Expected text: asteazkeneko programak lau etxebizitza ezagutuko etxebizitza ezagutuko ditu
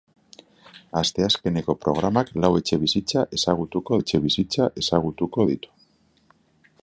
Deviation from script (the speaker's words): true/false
false